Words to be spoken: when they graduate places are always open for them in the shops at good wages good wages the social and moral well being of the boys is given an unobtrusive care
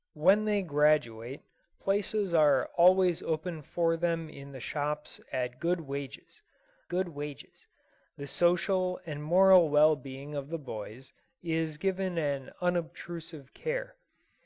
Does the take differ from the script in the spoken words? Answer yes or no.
no